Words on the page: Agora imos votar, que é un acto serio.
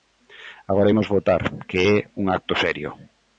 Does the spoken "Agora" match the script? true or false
true